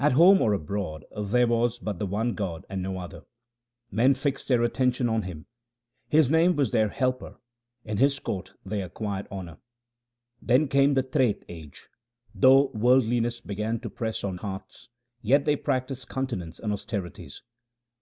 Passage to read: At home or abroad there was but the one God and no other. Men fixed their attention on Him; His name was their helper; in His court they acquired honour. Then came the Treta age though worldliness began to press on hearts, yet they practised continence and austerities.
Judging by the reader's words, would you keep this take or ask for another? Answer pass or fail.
pass